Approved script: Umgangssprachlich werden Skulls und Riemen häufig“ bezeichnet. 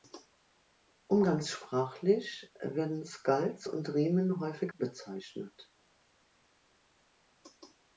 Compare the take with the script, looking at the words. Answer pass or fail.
pass